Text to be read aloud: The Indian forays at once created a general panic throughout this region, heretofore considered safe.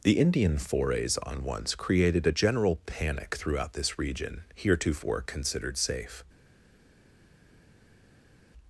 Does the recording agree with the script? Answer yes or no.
no